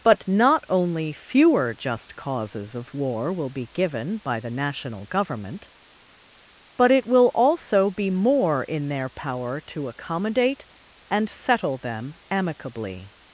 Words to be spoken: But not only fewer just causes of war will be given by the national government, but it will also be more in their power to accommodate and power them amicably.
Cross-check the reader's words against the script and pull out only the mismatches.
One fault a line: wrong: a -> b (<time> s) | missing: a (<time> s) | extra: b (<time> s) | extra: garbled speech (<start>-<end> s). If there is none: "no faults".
wrong: power -> settle (11.3 s)